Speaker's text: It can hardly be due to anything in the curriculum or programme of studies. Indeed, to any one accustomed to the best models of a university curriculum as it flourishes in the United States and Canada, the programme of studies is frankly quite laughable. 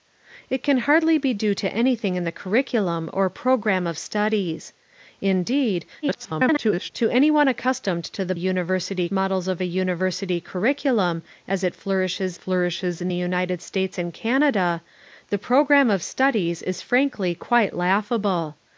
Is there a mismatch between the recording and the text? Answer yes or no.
yes